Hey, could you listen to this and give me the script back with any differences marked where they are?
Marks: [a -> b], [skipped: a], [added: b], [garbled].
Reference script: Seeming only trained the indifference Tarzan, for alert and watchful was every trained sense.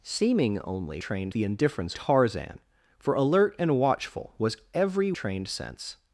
Seeming only trained the indifference Tarzan, for alert and watchful was every trained sense.